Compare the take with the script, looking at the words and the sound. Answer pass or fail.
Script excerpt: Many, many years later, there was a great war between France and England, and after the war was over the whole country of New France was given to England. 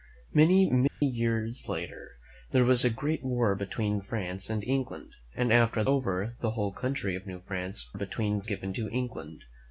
fail